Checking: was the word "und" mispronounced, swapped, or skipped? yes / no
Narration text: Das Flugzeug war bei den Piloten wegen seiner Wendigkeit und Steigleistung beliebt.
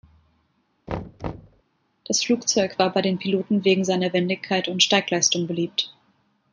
no